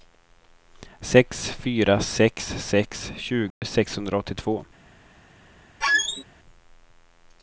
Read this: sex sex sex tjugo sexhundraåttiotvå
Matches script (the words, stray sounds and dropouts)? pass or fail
fail